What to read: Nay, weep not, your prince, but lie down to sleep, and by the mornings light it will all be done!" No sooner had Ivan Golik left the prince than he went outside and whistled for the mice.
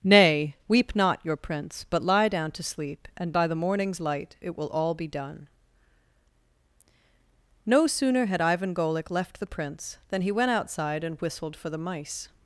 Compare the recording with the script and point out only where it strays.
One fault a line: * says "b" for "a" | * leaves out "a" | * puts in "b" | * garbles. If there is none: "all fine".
all fine